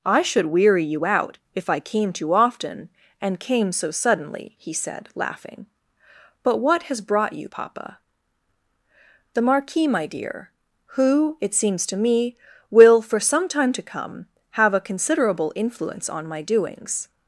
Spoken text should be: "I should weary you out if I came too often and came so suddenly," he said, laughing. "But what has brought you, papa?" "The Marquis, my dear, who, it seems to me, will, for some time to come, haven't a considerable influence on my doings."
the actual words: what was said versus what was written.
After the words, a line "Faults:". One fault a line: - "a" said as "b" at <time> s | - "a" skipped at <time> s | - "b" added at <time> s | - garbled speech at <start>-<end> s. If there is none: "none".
"I should weary you out if I came too often and came so suddenly," he said, laughing. "But what has brought you, papa?" "The Marquis, my dear, who, it seems to me, will, for some time to come, have a considerable influence on my doings."
Faults:
- "haven't" said as "have" at 14.5 s